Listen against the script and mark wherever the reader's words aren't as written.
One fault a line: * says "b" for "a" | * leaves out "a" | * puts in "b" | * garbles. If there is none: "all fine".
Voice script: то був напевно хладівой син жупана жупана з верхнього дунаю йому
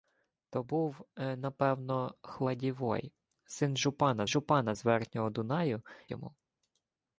all fine